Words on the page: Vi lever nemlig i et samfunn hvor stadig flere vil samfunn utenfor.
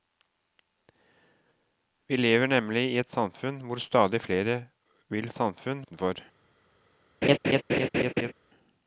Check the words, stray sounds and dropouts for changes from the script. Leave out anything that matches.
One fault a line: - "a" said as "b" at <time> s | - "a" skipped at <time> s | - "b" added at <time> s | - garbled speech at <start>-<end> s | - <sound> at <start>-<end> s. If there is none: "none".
- laugh at 7.2-8.3 s